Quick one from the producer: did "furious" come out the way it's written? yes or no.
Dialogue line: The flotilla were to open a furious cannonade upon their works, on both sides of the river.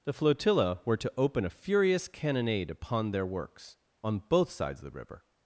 yes